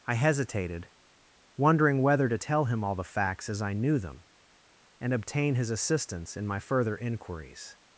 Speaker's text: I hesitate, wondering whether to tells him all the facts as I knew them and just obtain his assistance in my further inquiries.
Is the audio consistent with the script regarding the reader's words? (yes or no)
no